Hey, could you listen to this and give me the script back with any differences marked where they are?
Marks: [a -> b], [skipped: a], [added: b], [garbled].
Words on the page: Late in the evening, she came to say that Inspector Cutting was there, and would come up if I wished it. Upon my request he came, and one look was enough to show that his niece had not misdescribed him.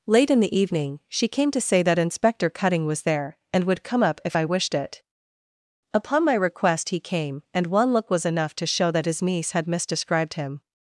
Late in the evening, she came to say that Inspector Cutting was there, and would come up if I wished it. Upon my request he came, and one look was enough to show that his niece had [skipped: not] misdescribed him.